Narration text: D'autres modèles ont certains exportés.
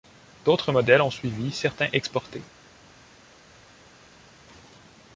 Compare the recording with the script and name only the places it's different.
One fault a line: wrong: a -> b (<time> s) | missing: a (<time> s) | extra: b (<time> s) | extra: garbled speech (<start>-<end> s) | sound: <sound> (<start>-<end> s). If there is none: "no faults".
extra: suivi (1.1 s)